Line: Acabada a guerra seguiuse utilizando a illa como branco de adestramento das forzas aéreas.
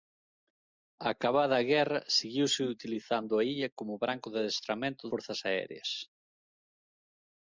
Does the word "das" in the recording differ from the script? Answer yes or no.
yes